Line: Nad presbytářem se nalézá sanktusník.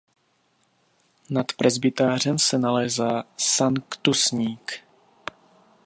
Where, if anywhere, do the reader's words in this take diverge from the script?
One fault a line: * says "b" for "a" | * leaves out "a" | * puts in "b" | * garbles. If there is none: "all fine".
all fine